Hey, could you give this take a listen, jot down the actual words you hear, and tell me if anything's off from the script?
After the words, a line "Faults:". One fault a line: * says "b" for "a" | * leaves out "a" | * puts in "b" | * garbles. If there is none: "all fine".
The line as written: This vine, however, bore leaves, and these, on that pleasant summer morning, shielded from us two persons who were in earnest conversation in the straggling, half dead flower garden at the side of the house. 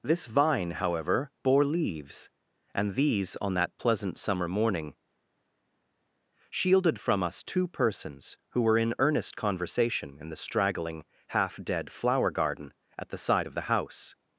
This vine, however, bore leaves, and these, on that pleasant summer morning, shielded from us two persons who were in earnest conversation in the straggling, half dead flower garden at the side of the house.
Faults:
all fine